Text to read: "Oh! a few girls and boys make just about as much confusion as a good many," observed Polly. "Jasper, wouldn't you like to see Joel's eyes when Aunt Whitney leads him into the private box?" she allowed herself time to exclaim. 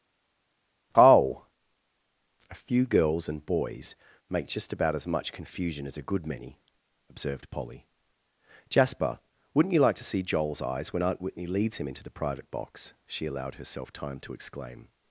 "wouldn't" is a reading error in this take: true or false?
false